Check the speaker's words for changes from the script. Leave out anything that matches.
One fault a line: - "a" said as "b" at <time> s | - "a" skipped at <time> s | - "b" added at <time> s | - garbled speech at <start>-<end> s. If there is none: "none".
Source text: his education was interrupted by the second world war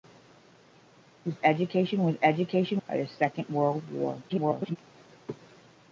- "interrupted" said as "education" at 2.2 s
- garbled speech at 4.3-4.8 s